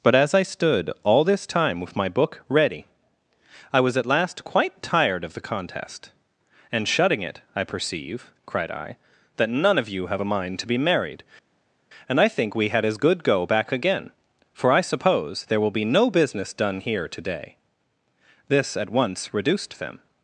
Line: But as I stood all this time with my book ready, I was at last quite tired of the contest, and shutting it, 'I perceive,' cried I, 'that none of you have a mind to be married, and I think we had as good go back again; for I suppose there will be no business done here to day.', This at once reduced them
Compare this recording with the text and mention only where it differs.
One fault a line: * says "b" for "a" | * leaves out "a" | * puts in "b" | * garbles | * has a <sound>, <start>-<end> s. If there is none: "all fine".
all fine